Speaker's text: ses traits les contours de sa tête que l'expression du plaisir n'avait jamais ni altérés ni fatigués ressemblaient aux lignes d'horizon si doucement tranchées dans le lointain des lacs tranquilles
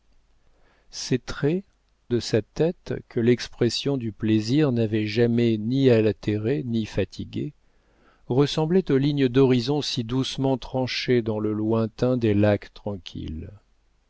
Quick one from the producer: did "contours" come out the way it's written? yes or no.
no